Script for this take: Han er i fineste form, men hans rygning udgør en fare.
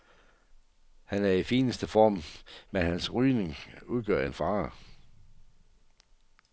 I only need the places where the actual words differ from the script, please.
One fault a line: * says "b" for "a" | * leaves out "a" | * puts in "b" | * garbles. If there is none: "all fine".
all fine